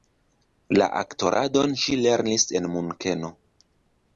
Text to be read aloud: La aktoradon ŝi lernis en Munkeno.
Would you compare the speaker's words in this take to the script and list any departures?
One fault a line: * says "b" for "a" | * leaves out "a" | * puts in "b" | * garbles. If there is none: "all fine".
all fine